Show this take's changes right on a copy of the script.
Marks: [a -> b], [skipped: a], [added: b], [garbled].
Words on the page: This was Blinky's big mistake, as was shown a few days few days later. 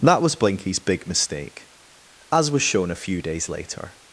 [This -> That] was Blinky's big mistake, as was shown a few days [skipped: few days] later.